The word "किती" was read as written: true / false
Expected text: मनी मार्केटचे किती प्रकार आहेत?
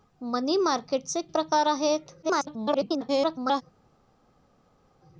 false